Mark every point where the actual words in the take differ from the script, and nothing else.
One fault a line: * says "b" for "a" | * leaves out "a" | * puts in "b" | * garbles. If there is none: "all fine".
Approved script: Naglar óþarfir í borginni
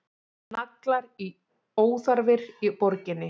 all fine